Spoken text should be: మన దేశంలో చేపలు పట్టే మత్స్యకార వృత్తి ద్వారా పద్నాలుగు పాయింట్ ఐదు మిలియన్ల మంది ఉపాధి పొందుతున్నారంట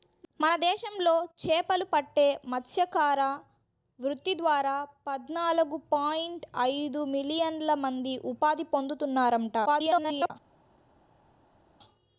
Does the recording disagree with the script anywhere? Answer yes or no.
yes